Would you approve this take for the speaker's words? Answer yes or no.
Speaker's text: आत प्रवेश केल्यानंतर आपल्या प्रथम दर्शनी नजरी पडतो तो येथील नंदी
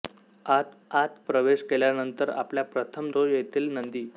no